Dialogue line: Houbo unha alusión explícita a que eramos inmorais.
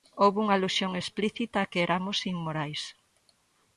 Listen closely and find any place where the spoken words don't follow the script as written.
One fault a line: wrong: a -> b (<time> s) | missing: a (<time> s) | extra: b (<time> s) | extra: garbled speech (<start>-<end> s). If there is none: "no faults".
no faults